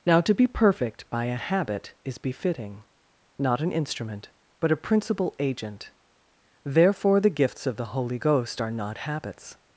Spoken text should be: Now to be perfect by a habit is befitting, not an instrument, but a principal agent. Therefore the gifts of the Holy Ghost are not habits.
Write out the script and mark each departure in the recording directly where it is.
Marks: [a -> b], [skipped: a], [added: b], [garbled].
Now to be perfect by a habit is befitting, not an instrument, but a principal agent. Therefore the gifts of the Holy Ghost are not habits.